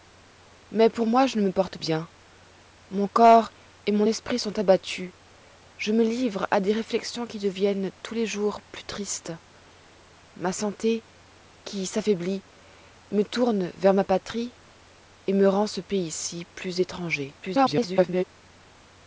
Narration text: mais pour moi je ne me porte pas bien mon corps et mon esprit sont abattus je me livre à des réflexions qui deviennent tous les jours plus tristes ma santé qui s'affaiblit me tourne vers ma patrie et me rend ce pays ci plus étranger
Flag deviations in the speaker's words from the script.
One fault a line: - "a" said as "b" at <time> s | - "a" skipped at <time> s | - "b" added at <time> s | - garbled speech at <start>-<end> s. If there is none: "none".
- "pas" skipped at 1.8 s
- garbled speech at 17.4-18.2 s